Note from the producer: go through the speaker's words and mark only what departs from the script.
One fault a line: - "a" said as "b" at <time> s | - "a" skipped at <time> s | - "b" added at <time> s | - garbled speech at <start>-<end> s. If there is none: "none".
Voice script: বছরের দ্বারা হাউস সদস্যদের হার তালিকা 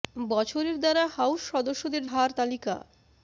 none